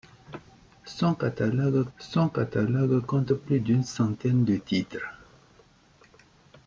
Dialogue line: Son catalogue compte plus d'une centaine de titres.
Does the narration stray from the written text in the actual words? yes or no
yes